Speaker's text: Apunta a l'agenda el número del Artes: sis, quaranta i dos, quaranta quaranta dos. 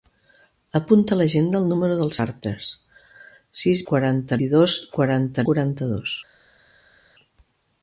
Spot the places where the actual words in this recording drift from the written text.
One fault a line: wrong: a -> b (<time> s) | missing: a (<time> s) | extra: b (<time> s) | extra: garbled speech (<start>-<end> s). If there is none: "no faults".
no faults